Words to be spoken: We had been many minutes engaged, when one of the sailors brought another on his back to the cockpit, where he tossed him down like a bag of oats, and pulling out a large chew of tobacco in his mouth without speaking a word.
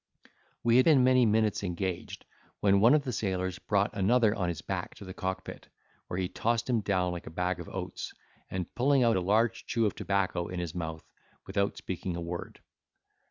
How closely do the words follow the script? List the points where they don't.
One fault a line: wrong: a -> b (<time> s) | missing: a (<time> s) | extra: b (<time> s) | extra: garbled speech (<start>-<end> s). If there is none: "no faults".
no faults